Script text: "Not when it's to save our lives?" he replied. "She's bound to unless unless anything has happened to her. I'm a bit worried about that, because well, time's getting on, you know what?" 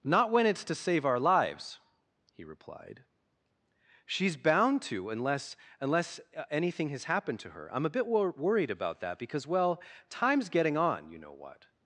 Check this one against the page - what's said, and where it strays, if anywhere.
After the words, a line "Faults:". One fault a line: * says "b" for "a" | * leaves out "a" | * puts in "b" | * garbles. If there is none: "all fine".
"Not when it's to save our lives?" he replied. "She's bound to unless unless anything has happened to her. I'm a bit wor worried about that, because well, time's getting on, you know what?"
Faults:
* puts in "wor"